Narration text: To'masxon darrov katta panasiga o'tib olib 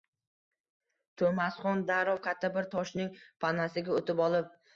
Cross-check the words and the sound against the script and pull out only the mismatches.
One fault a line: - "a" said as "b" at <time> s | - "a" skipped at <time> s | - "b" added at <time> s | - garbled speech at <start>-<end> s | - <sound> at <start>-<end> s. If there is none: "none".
- "bir toshning" added at 2.6 s